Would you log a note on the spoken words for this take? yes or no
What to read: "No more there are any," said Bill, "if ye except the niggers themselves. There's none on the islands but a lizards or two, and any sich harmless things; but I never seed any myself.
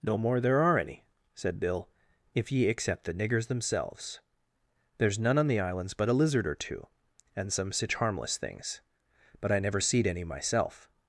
yes